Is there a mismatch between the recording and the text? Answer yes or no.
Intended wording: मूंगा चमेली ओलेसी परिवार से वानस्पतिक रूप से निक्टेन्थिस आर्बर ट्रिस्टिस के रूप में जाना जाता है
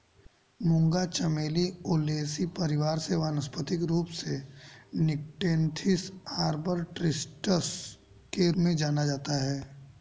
yes